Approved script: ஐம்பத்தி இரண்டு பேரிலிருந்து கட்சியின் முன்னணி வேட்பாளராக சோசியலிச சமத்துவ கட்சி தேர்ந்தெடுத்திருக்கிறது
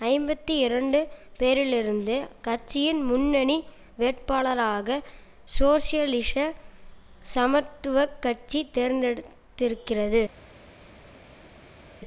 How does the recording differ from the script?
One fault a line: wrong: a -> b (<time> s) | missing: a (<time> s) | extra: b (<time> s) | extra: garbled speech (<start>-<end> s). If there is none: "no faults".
no faults